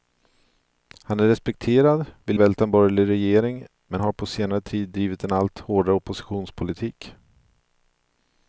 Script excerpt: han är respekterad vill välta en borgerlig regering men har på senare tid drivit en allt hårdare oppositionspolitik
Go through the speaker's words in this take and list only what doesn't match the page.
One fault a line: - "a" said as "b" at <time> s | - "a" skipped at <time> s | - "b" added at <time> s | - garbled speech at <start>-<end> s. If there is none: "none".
none